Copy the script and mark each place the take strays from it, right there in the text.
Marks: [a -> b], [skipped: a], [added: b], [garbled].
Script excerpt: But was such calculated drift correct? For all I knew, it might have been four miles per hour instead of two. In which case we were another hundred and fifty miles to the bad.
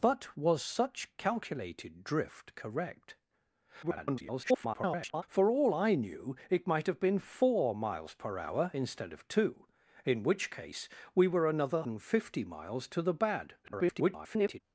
But was such calculated drift correct? [garbled] For all I knew, it might have been four miles per hour instead of two. In which case we were another [skipped: hundred] and fifty miles to the bad. [garbled]